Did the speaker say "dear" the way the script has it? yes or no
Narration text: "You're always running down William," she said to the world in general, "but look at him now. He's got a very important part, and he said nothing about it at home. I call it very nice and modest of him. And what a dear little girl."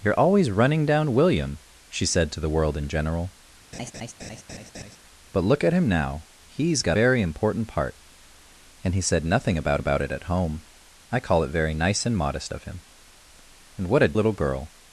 no